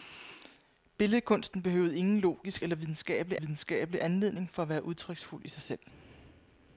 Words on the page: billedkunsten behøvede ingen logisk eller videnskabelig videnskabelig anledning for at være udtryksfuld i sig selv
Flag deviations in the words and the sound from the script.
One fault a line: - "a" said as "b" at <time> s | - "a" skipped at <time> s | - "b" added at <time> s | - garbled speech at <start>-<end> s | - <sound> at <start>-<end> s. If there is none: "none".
none